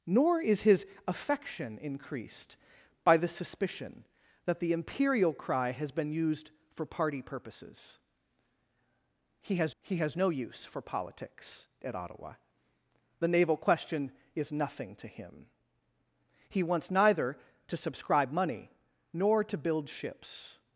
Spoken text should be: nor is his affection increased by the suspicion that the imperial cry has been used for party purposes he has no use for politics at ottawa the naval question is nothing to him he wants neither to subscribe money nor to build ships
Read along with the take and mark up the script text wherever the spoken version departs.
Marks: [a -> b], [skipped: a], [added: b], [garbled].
nor is his affection increased by the suspicion that the imperial cry has been used for party purposes he has [added: he has] no use for politics at ottawa the naval question is nothing to him he wants neither to subscribe money nor to build ships